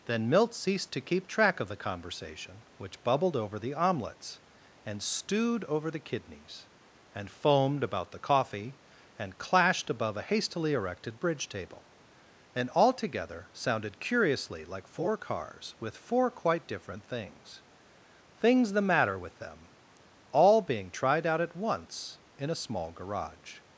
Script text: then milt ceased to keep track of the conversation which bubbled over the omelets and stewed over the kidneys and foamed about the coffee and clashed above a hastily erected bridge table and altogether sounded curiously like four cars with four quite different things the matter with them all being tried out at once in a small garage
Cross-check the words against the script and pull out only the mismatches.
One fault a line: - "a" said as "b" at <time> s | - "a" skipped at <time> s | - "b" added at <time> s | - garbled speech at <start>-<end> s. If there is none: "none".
- "things" added at 18.3 s